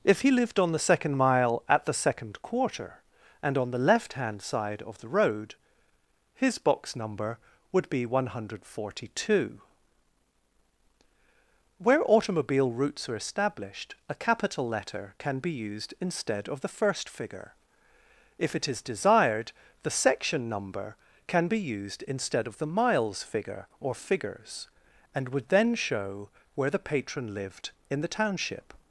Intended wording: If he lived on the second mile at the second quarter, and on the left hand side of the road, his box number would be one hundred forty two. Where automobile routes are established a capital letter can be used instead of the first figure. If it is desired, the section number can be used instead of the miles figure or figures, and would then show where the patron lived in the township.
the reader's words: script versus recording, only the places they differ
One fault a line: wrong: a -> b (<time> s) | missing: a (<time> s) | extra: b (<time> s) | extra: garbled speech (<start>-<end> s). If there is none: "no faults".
no faults